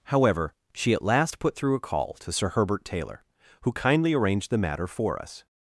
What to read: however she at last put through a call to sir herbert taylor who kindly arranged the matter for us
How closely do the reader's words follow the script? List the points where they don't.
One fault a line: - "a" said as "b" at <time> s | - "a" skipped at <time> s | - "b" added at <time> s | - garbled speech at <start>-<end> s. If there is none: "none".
none